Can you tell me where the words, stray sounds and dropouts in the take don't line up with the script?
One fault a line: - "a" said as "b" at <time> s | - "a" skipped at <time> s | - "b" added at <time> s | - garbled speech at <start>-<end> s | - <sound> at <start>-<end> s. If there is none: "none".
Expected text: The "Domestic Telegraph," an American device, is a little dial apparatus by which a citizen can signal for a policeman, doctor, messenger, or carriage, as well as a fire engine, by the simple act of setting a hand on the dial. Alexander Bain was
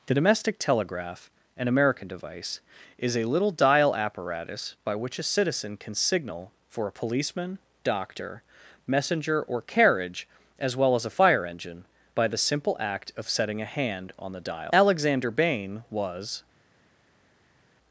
none